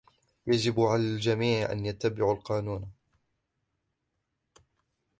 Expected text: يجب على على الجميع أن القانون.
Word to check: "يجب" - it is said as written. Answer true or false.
true